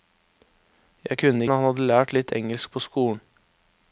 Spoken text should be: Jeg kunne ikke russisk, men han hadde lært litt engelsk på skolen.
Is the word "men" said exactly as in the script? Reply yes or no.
no